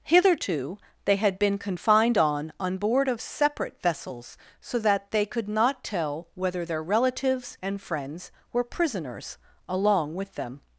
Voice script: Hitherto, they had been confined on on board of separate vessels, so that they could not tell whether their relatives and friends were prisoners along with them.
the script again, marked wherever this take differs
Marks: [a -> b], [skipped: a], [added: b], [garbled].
Hitherto, they had been confined on on board of separate vessels, so that they could not tell whether their relatives and friends were prisoners along with them.